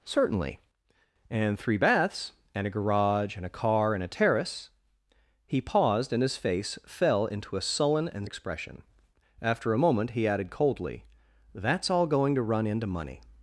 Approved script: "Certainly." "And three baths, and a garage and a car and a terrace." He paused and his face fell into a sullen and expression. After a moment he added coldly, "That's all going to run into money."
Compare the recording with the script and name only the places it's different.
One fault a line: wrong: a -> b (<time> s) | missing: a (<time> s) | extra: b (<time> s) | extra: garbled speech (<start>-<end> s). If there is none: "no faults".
no faults